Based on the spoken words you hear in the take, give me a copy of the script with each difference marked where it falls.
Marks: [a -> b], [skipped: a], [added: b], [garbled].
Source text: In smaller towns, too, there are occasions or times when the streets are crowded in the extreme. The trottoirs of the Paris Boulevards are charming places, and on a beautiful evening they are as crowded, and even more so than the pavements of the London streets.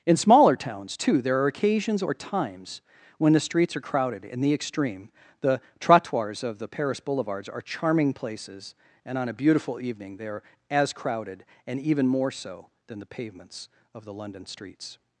In smaller towns, too, there are occasions or times when the streets are crowded in the extreme. The trottoirs of the Paris Boulevards are charming places, and on a beautiful evening they are as crowded, and even more so than the pavements of the London streets.